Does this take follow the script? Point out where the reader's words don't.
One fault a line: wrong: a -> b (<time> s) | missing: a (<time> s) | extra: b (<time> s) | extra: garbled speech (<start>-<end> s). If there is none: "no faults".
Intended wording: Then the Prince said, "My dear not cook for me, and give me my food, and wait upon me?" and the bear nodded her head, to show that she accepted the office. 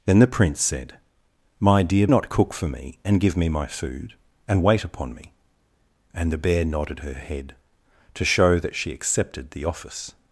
no faults